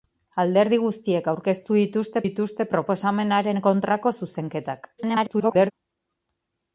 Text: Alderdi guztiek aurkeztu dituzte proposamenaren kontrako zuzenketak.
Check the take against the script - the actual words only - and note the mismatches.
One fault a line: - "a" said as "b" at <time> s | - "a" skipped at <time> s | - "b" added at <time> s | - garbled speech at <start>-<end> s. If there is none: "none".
- "dituzte" added at 2.2 s
- garbled speech at 5.0-5.7 s